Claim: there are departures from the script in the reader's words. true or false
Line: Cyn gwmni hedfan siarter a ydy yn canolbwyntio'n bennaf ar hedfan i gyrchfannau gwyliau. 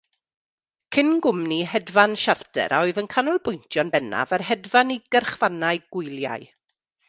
true